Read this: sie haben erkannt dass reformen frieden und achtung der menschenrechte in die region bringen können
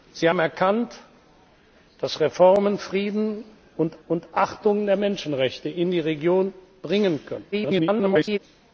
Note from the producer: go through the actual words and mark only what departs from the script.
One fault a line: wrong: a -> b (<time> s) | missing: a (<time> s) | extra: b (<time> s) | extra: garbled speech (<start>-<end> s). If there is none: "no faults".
extra: und (4.1 s)
extra: garbled speech (7.5-8.4 s)